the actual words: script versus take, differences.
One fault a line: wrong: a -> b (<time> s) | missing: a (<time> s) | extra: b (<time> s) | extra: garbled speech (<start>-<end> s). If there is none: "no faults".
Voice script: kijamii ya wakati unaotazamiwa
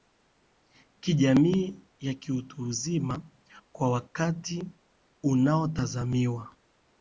extra: kiutu uzima kwa (2.1 s)